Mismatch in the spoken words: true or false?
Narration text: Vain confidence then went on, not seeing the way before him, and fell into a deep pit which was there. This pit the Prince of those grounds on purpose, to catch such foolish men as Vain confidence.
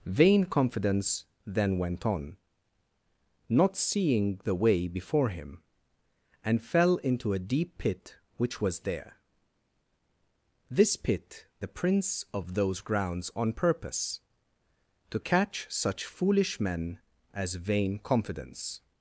false